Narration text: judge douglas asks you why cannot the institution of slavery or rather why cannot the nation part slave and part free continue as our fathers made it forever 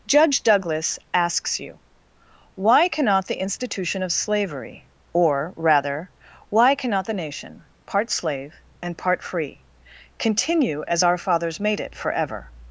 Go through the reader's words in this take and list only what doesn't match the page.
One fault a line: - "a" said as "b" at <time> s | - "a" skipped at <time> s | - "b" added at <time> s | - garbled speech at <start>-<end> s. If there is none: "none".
none